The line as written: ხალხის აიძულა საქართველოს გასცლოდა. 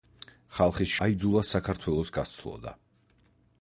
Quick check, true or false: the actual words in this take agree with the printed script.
true